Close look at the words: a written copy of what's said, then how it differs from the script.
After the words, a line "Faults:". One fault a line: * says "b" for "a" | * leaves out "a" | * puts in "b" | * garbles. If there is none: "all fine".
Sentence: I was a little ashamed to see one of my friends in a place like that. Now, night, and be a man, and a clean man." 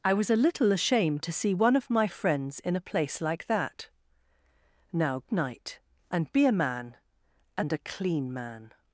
I was a little ashamed to see one of my friends in a place like that. Now, night, and be a man, and a clean man."
Faults:
all fine